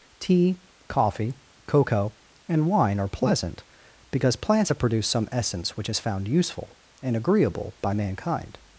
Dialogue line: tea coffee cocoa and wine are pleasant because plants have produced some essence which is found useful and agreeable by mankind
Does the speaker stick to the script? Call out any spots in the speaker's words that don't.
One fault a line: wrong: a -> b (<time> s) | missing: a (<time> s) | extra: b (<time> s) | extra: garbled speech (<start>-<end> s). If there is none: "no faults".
no faults